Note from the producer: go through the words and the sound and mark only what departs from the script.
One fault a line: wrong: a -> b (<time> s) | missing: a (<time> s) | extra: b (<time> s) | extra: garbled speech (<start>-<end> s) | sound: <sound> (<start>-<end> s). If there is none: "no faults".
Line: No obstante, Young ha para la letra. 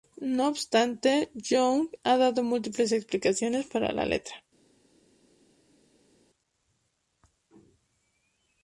extra: dado múltiples explicaciones (2.2 s)